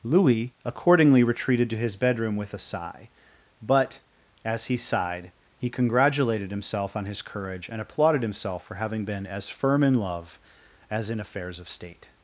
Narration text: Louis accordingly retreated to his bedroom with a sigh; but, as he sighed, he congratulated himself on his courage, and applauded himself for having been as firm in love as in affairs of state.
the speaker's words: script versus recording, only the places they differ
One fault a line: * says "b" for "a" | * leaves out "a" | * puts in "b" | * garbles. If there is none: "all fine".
all fine